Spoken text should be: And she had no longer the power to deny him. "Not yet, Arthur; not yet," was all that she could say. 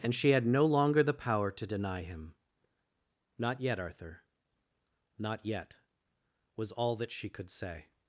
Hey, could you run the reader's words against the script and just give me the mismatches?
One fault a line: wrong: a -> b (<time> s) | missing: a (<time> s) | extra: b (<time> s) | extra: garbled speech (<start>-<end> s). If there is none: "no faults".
no faults